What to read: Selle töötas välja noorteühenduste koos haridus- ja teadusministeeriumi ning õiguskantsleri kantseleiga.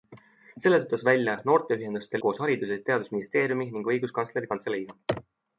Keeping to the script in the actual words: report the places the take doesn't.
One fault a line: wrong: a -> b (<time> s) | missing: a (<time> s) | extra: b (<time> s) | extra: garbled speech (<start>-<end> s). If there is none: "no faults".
no faults